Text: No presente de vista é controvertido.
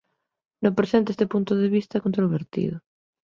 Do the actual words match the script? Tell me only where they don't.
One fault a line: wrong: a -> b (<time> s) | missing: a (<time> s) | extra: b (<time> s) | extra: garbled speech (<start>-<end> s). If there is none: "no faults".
extra: este punto (1.1 s)